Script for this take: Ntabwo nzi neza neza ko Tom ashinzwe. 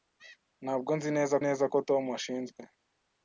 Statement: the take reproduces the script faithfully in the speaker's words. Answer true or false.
true